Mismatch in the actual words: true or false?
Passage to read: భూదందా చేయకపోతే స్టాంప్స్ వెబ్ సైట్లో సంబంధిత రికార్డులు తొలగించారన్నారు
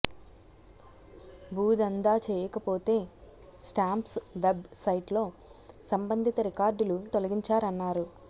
false